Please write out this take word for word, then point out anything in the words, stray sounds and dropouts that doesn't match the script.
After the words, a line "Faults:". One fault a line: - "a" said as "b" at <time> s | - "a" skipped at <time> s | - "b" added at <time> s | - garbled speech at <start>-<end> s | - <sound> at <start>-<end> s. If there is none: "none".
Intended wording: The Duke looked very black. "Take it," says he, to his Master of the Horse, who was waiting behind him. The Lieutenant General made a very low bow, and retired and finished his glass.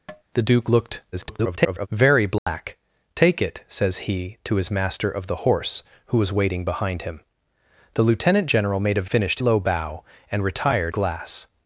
The Duke looked [garbled] very black. "Take it," says he, to his Master of the Horse, who was waiting behind him. The Lieutenant General made a finished low bow, and retired glass.
Faults:
- tap at 0.1-0.2 s
- garbled speech at 1.1-1.9 s
- dropout at 2.4-2.5 s
- "very" said as "finished" at 9.0 s
- "and finished his" skipped at 10.9 s